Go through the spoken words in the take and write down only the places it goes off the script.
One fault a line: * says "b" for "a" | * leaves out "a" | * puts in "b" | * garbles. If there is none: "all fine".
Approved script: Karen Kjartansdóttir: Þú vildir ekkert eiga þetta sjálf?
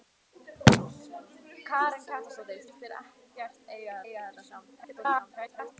* leaves out "Þú"
* puts in "eiga"
* garbles